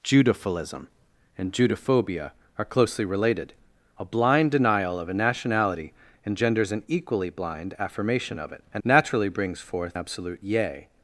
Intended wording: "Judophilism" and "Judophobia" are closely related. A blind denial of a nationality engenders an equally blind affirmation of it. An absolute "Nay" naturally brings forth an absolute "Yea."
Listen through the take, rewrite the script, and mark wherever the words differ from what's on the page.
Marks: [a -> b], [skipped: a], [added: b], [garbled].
"Judophilism" and "Judophobia" are closely related. A blind denial of a nationality engenders an equally blind affirmation of it. An [skipped: absolute "Nay"] naturally brings forth [skipped: an] absolute "Yea."